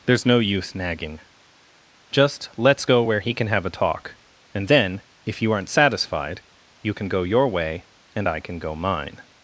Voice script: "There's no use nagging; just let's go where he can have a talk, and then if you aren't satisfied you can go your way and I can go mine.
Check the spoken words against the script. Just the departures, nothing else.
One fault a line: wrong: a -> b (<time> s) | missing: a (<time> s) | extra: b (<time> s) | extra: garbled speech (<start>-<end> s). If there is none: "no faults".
no faults